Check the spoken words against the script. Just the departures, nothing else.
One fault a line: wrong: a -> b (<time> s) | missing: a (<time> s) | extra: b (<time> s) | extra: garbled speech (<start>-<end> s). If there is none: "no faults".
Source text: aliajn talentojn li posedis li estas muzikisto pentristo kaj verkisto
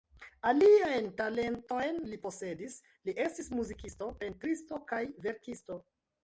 wrong: estas -> estis (3.2 s)